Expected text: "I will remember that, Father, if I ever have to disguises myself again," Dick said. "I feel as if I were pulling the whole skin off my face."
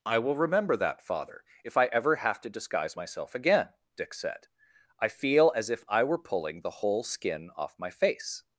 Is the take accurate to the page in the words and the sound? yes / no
no